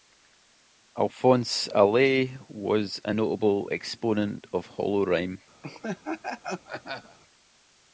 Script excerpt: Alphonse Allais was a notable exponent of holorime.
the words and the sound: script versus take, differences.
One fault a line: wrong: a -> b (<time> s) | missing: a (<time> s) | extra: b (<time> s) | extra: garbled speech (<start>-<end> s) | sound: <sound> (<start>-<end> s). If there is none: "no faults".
sound: laugh (5.6-7.2 s)